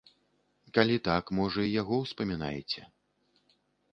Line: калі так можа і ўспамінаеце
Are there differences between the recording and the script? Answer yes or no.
yes